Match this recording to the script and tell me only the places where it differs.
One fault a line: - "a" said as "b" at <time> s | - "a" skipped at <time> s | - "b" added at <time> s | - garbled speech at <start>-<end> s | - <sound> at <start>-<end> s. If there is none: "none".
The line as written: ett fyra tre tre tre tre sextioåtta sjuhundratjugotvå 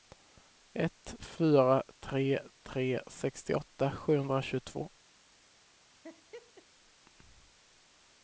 - "tre tre" skipped at 3.0 s
- laugh at 6.0-6.7 s